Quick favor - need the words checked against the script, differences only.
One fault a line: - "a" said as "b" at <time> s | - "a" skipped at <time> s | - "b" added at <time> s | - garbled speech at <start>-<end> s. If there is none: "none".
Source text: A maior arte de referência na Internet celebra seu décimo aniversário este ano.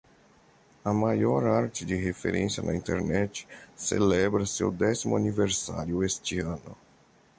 none